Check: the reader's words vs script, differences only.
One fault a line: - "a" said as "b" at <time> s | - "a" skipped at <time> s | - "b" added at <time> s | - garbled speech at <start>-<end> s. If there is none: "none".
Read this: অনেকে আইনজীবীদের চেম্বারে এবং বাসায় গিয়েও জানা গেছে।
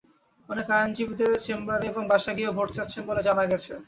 - "ভোট চাচ্ছেন বলে" added at 2.6 s